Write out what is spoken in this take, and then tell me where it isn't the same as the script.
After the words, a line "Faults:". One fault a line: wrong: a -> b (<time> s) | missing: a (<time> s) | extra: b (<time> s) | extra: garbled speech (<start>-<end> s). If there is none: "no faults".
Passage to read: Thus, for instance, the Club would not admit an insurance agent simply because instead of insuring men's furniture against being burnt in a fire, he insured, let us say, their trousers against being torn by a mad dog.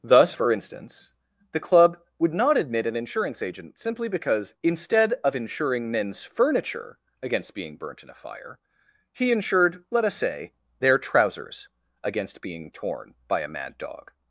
Thus, for instance, the Club would not admit an insurance agent simply because instead of insuring men's furniture against being burnt in a fire, he insured, let us say, their trousers against being torn by a mad dog.
Faults:
no faults